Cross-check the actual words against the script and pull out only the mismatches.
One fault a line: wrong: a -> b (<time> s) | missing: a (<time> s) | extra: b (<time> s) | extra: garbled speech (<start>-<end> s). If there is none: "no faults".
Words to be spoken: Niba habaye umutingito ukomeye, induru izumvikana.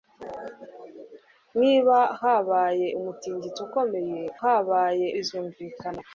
wrong: induru -> habaye (4.4 s)